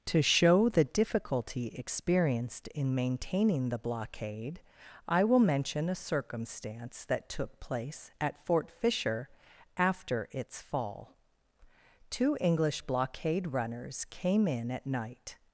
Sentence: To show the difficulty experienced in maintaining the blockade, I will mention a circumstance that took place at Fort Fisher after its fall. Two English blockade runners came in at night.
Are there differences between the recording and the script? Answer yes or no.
no